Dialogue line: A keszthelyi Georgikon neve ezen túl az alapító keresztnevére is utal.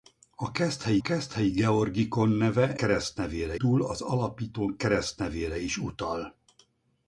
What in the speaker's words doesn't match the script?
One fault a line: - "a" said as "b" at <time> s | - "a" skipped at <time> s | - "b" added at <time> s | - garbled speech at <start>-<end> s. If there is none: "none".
- "keszthelyi" added at 1.0 s
- "ezen" said as "keresztnevére" at 2.7 s